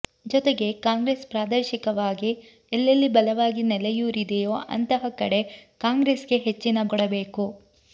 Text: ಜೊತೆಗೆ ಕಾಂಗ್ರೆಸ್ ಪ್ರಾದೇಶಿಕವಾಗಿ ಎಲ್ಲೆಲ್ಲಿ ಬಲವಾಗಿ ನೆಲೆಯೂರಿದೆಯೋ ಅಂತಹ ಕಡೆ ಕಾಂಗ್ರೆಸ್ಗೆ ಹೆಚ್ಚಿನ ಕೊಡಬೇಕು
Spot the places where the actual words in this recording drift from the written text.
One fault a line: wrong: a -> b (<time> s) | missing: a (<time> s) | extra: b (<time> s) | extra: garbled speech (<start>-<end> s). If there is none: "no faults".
no faults